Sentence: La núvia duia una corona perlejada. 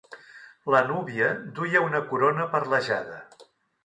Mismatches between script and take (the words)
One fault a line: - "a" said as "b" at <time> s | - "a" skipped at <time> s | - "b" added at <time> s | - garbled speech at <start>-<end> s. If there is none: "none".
none